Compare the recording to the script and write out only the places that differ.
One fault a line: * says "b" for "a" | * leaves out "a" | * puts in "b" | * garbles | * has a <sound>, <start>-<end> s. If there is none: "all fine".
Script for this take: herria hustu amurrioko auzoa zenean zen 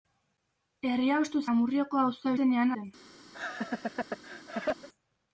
* has a laugh, 3.3-4.9 s